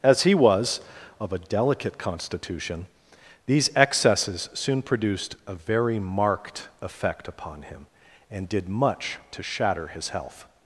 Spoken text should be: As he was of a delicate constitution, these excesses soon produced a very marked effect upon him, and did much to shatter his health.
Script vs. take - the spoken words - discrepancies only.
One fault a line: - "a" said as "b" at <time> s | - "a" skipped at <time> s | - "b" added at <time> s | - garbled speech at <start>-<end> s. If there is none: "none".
none